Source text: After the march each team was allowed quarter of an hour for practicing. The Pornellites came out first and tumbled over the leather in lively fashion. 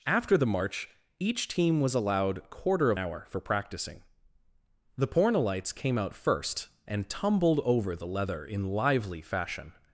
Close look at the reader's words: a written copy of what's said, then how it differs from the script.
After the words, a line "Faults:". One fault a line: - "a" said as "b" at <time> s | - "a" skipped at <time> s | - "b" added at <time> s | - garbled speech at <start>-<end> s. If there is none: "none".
After the march each team was allowed quarter of hour for practicing. The Pornellites came out first and tumbled over the leather in lively fashion.
Faults:
- "an" skipped at 3.0 s